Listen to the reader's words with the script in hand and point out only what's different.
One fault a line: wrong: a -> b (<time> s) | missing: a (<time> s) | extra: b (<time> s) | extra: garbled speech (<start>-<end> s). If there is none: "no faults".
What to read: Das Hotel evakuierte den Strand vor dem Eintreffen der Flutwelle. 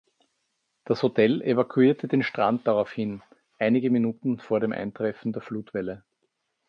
extra: daraufhin einige Minuten (2.6 s)